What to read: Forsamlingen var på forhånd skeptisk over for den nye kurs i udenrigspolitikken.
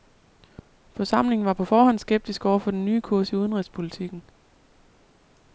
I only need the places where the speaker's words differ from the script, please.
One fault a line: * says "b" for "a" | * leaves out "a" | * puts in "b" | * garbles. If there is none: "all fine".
all fine